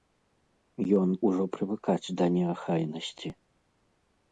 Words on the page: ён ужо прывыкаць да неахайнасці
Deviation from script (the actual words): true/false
false